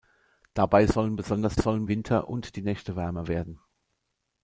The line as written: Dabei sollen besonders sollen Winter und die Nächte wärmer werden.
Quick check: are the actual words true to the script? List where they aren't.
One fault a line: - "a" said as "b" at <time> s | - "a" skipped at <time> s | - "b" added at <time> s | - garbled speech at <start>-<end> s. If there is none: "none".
none